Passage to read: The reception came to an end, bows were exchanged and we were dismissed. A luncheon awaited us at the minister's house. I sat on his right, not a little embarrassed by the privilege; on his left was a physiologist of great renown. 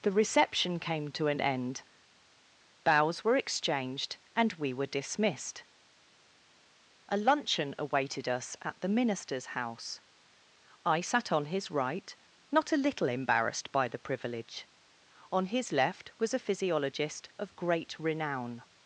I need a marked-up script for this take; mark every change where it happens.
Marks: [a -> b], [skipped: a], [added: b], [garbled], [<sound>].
The reception came to an end, bows were exchanged and we were dismissed. A luncheon awaited us at the minister's house. I sat on his right, not a little embarrassed by the privilege; on his left was a physiologist of great renown.